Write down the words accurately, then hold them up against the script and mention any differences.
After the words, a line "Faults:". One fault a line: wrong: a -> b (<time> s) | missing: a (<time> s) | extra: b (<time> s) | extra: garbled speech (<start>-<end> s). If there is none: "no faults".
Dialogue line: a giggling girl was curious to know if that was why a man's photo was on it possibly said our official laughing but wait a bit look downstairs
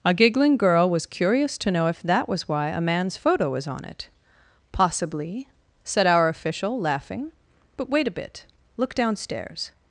a giggling girl was curious to know if that was why a man's photo was on it possibly said our official laughing but wait a bit look downstairs
Faults:
no faults